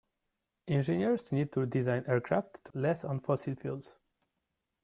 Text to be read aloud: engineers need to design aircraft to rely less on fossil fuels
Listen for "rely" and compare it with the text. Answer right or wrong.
wrong